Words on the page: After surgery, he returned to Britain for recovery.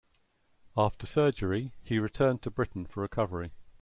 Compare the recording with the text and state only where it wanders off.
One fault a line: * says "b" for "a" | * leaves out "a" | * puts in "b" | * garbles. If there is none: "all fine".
all fine